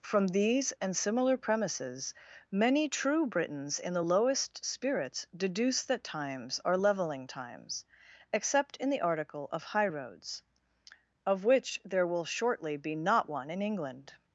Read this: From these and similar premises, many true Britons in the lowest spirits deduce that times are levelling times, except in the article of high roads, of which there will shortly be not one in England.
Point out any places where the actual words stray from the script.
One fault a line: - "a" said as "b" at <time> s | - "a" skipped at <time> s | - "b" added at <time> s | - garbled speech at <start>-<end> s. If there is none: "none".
none